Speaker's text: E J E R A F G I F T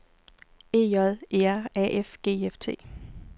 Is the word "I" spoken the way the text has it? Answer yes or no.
yes